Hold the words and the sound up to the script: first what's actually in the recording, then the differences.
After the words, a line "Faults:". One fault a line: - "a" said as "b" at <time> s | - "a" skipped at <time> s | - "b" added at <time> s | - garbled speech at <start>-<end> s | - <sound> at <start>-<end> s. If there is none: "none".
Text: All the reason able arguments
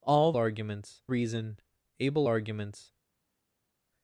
All arguments reason able arguments
Faults:
- "the" said as "arguments" at 0.3 s